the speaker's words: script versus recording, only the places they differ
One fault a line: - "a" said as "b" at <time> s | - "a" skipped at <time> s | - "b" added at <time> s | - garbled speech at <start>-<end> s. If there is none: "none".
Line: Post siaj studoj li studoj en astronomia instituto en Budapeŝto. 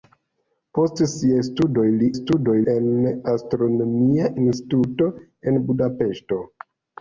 none